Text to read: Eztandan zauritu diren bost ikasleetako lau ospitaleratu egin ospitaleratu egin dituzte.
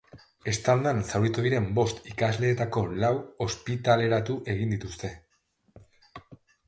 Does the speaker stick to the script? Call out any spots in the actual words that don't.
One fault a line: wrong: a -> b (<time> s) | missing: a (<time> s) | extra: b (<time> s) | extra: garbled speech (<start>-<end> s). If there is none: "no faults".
missing: ospitaleratu egin (4.7 s)